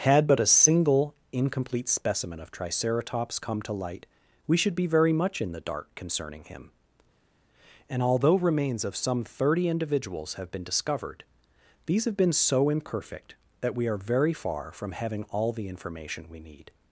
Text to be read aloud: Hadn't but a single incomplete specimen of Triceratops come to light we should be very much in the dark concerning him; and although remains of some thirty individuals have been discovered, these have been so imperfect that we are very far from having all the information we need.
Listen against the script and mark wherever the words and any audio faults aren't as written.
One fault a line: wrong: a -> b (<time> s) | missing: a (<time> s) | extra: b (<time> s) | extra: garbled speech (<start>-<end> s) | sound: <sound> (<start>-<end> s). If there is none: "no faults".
wrong: Hadn't -> Had (0.0 s)